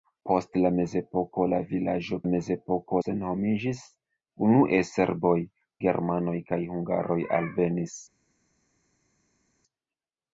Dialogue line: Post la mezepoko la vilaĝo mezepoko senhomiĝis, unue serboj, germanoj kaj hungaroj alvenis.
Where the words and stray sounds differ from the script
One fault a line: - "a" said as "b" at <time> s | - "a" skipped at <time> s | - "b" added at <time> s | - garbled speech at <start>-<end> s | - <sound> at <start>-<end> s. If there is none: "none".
none